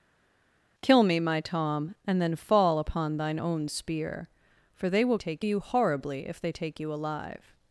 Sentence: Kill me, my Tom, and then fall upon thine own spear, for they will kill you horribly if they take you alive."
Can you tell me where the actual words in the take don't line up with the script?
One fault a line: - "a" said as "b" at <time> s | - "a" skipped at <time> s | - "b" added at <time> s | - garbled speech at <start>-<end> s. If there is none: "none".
- "kill" said as "take" at 5.2 s